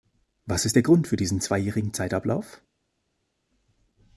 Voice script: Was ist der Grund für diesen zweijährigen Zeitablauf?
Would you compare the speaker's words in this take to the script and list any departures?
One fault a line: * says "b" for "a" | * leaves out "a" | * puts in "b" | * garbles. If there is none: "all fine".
all fine